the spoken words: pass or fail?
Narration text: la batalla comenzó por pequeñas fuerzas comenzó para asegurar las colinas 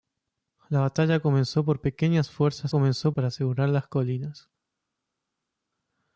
pass